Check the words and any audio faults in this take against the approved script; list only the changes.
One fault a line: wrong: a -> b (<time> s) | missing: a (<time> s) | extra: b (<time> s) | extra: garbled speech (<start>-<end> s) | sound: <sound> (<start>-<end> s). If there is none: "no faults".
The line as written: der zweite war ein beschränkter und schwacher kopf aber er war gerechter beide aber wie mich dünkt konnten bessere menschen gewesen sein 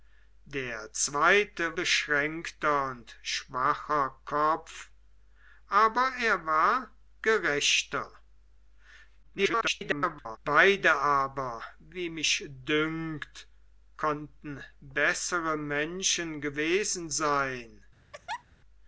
missing: war ein (1.8 s)
extra: garbled speech (9.2-10.4 s)
sound: laugh (18.1-18.4 s)